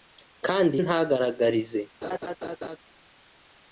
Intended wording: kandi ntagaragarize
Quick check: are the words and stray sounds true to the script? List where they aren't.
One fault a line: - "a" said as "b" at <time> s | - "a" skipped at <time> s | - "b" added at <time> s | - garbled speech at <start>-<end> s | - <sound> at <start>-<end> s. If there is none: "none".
- laugh at 2.0-2.8 s